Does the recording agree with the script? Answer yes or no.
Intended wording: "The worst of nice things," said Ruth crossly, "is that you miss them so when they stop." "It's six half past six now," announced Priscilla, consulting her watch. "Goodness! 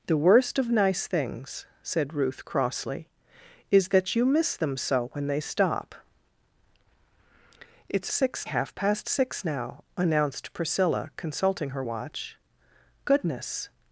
yes